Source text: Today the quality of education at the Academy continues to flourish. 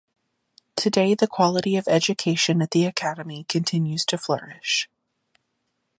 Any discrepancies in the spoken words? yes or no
no